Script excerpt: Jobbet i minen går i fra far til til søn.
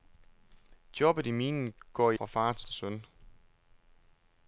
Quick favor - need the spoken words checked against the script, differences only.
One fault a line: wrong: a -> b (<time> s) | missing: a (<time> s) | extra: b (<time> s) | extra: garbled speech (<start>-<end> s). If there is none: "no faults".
no faults